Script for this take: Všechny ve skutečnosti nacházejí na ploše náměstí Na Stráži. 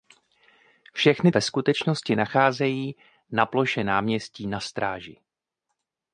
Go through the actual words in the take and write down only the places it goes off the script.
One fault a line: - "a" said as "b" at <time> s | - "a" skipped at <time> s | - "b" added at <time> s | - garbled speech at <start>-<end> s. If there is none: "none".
none